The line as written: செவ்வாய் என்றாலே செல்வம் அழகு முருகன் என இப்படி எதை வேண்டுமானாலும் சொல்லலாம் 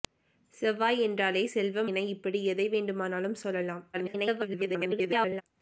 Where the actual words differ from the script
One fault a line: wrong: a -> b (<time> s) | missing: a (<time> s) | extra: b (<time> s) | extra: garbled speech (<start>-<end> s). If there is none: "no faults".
missing: அழகு முருகன் (1.9 s)
extra: garbled speech (3.9-5.4 s)